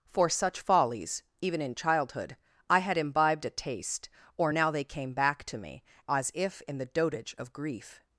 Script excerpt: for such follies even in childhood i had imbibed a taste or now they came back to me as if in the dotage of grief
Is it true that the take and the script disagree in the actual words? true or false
false